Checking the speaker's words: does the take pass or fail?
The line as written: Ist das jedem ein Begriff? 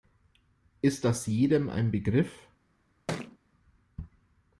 pass